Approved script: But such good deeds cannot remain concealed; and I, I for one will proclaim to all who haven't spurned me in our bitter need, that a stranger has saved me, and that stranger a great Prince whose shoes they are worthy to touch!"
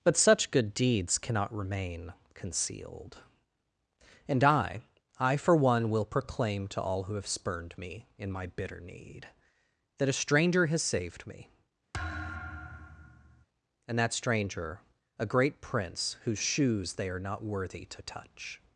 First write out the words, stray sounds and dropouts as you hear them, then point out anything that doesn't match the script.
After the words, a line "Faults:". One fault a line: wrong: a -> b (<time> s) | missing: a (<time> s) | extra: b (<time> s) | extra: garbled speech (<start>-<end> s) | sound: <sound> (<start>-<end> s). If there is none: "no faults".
But such good deeds cannot remain concealed; and I, I for one will proclaim to all who have spurned me in my bitter need, that a stranger has saved me, and that stranger a great Prince whose shoes they are not worthy to touch!"
Faults:
wrong: haven't -> have (7.1 s)
wrong: our -> my (8.3 s)
sound: thud (11.9-13.5 s)
extra: not (17.2 s)